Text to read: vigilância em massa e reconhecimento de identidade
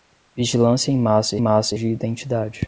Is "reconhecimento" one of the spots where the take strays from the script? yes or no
yes